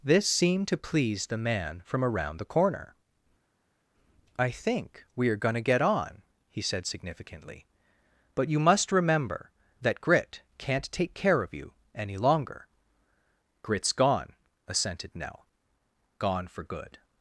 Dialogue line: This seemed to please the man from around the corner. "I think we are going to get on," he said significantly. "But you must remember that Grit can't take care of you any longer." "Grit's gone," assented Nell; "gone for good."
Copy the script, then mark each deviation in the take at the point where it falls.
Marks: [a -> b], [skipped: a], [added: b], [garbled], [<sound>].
This seemed to please the man from around the corner. "I think we are going to get on," he said significantly. "But you must remember that Grit can't take care of you any longer." "Grit's gone," assented Nell; "gone for good."